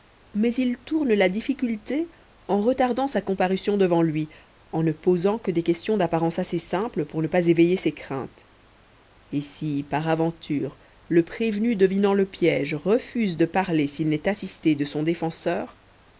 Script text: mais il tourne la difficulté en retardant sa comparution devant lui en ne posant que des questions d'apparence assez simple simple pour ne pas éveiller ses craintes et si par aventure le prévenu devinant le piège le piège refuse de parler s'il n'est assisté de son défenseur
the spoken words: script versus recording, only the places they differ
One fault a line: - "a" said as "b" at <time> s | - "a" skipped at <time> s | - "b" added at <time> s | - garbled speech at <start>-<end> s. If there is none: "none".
- "simple" skipped at 7.0 s
- "le piège" skipped at 12.7 s